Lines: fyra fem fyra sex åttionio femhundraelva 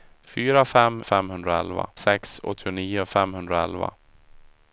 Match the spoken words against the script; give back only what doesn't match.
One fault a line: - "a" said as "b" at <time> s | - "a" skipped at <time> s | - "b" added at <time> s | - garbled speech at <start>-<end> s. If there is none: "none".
- "fyra" said as "femhundraelva" at 1.0 s